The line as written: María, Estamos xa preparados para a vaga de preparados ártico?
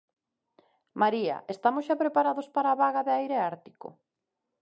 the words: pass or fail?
fail